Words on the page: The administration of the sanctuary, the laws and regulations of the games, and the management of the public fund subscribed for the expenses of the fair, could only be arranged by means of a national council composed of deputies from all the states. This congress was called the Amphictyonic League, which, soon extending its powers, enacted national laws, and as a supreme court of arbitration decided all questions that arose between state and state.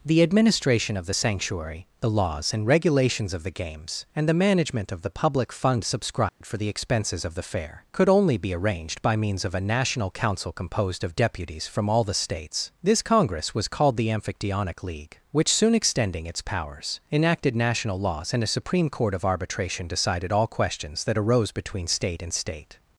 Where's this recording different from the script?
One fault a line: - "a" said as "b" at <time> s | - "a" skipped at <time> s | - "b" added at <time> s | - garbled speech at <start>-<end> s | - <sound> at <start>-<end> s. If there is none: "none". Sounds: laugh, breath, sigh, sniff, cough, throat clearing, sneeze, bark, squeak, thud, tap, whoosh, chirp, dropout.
- dropout at 6.3-6.4 s
- "as" skipped at 18.4 s